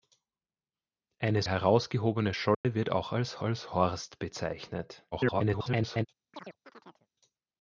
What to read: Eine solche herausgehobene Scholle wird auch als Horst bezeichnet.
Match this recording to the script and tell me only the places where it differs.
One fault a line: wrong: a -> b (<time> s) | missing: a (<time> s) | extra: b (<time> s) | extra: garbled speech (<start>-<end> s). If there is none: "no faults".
missing: solche (1.4 s)
extra: als (3.4 s)
extra: garbled speech (5.1-6.1 s)